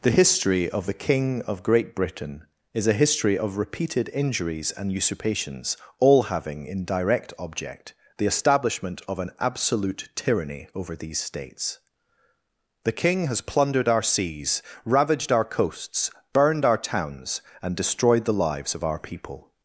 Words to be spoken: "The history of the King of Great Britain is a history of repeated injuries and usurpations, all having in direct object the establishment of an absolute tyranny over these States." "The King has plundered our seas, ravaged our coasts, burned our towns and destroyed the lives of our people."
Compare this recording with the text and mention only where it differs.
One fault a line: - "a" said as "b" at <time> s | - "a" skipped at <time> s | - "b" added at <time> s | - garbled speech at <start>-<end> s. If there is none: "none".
none